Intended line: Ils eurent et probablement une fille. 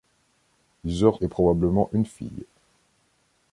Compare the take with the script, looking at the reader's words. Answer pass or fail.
pass